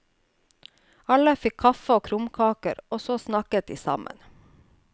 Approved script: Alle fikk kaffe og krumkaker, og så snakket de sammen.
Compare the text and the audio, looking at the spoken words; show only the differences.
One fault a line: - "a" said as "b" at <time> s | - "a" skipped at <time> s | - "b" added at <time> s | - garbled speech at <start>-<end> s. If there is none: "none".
none